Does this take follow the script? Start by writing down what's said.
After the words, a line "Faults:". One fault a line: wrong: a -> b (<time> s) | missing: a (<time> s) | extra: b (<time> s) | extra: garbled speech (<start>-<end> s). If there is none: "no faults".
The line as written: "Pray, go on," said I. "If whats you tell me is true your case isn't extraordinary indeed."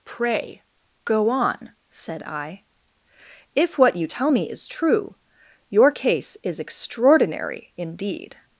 "Pray, go on," said I. "If what you tell me is true your case is extraordinary indeed."
Faults:
wrong: whats -> what (3.8 s)
wrong: isn't -> is (6.4 s)